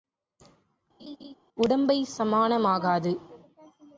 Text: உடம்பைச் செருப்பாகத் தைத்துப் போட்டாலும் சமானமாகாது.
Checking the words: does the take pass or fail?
fail